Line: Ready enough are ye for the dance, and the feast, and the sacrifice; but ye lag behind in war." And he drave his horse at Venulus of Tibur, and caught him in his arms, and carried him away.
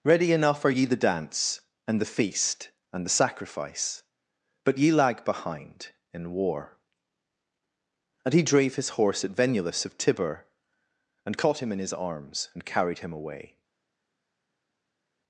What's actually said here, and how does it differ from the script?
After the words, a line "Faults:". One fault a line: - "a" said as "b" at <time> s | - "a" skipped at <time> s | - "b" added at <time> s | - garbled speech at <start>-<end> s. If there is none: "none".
Ready enough are ye the dance, and the feast, and the sacrifice; but ye lag behind in war." And he drave his horse at Venulus of Tibur, and caught him in his arms, and carried him away.
Faults:
- "for" skipped at 0.8 s